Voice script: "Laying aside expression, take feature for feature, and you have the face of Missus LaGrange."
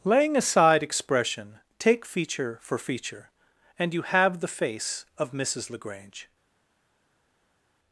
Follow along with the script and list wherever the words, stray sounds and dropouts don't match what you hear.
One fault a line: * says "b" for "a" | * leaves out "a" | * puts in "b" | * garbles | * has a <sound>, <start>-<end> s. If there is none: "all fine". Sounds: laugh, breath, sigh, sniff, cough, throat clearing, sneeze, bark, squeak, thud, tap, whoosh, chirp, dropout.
all fine